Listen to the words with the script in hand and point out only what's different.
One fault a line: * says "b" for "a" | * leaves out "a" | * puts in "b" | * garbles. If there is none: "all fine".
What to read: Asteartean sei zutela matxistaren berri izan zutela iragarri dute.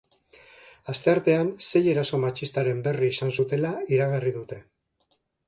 * says "eraso" for "zutela"